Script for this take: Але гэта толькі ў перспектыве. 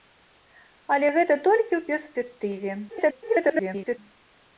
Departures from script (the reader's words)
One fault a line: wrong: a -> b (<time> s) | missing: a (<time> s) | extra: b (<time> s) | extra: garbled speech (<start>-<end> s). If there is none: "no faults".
extra: garbled speech (2.9-4.0 s)